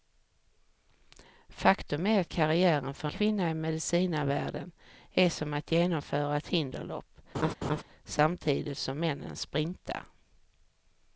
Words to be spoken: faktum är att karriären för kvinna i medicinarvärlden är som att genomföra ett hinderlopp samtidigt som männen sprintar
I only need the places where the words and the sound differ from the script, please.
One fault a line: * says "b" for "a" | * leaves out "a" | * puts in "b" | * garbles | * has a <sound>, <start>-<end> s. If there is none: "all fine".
* has a laugh, 7.3-7.8 s